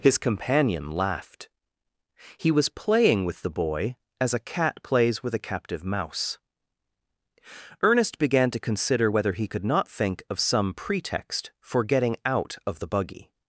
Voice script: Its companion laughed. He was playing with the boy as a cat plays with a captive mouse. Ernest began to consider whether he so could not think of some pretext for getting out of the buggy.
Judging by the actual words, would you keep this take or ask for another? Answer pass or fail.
fail